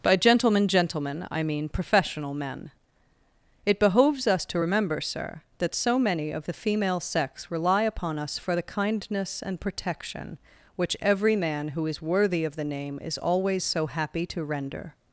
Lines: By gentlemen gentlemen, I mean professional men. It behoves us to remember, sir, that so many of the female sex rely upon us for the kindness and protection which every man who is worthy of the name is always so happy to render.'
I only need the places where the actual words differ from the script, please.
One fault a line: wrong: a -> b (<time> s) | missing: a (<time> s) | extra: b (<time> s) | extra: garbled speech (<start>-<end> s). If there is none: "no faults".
no faults